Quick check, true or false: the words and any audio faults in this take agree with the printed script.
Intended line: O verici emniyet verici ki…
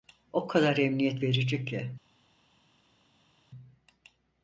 false